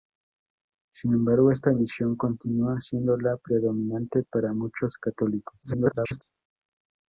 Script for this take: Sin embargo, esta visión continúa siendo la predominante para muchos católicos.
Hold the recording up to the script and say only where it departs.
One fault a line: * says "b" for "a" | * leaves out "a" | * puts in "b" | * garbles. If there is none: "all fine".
* garbles